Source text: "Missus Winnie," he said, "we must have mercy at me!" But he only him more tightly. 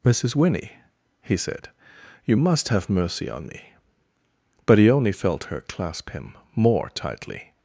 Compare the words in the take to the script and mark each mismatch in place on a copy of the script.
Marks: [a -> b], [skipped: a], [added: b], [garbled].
"Missus Winnie," he said, ["we -> you] must have mercy [at -> on] me!" But he only [added: felt her clasp] him more tightly.